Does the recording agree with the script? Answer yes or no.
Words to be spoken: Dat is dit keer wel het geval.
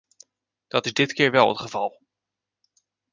yes